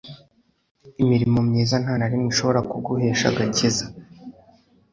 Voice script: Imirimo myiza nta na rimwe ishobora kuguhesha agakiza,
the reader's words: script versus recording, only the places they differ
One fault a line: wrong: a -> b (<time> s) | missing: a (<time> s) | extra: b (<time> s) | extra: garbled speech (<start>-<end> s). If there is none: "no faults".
no faults